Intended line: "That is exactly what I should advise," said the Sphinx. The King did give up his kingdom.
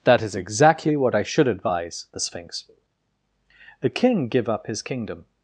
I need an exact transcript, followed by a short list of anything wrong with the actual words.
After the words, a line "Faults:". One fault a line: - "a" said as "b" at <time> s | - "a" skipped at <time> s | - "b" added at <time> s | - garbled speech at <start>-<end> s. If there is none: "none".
"That is exactly what I should advise," the Sphinx. The King give up his kingdom.
Faults:
- "said" skipped at 2.1 s
- "did" skipped at 4.3 s